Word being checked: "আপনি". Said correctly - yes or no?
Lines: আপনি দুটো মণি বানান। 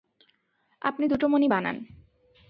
yes